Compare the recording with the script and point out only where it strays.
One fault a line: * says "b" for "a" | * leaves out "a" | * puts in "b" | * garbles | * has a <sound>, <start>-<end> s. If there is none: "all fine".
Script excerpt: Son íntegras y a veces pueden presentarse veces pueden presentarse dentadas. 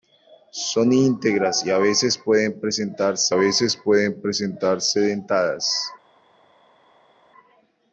all fine